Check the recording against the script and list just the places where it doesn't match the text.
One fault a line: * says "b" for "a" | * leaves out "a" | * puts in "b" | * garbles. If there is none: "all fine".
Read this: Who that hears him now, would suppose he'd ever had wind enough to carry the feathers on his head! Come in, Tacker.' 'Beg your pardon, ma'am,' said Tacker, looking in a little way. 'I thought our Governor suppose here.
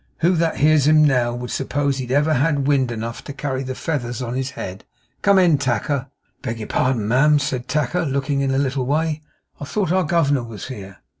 * says "was" for "suppose"